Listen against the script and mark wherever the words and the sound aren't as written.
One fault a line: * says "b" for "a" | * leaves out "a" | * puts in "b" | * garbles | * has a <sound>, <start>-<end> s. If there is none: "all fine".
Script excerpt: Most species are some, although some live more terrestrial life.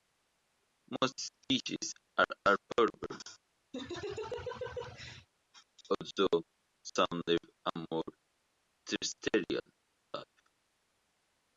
* says "arboreal" for "some"
* has a laugh, 3.7-5.3 s
* puts in "a"